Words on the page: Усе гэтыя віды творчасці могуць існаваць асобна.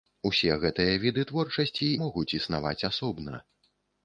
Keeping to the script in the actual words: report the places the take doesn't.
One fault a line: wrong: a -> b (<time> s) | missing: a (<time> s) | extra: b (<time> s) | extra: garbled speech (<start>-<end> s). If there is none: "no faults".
no faults